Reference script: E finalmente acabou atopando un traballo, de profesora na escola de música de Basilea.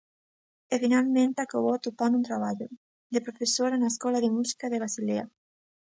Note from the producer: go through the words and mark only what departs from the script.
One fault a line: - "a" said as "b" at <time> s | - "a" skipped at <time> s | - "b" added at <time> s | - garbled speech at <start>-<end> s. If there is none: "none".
none